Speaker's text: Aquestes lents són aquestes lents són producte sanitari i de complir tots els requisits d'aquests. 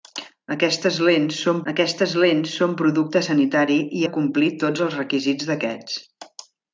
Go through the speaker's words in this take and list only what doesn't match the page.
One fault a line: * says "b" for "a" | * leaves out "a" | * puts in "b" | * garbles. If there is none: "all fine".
all fine